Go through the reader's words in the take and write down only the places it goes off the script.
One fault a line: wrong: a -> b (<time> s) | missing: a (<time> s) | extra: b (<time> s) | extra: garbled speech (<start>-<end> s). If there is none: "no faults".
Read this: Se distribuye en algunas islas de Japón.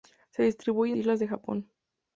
missing: algunas (1.0 s)